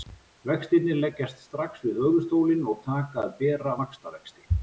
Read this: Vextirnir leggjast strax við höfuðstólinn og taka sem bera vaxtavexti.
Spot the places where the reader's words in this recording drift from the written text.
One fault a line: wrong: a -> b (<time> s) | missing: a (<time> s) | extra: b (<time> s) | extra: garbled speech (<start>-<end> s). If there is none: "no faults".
wrong: sem -> að (3.3 s)